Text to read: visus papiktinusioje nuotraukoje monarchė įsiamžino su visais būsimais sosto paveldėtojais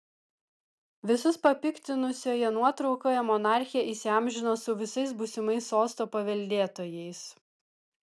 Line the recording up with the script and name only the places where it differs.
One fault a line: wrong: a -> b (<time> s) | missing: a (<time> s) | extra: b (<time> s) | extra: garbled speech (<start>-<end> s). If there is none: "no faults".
no faults